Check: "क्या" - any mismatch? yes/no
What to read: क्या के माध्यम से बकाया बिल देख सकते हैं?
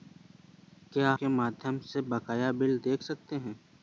no